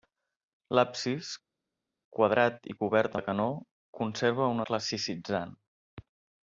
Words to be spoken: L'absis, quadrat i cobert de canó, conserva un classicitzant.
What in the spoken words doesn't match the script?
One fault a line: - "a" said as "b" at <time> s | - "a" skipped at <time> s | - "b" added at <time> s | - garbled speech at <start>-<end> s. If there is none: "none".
none